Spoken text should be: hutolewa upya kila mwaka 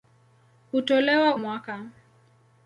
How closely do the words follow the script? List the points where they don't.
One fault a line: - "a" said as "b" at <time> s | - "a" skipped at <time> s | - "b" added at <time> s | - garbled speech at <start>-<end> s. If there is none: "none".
- "upya kila" skipped at 1.4 s